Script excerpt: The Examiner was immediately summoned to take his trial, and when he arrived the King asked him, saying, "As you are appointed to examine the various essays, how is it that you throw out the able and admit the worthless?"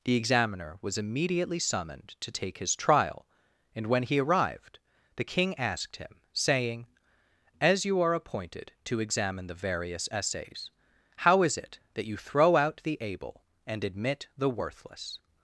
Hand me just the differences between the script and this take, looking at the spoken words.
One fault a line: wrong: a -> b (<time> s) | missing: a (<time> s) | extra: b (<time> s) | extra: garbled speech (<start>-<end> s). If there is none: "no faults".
no faults